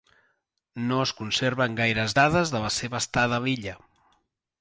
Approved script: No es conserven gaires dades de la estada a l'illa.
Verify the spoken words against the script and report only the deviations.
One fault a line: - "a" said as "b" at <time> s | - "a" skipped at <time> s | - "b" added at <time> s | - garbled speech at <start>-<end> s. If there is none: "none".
- "seva" added at 2.8 s